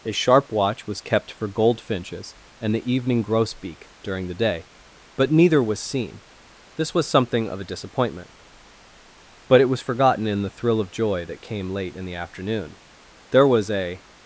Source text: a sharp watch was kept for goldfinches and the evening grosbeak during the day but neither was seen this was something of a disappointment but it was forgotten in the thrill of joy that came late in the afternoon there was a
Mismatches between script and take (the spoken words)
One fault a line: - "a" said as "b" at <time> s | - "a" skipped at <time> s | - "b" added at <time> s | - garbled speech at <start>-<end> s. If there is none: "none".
none